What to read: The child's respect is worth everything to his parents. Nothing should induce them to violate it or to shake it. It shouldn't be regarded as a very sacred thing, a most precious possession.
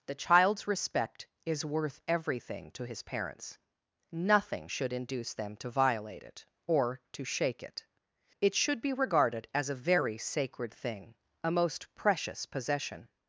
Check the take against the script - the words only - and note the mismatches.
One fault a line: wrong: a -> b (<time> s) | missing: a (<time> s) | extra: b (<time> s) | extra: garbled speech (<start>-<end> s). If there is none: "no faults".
wrong: shouldn't -> should (8.5 s)